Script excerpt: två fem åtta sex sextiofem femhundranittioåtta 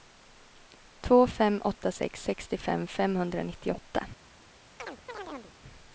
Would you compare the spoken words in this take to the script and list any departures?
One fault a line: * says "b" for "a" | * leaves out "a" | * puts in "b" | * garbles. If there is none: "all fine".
all fine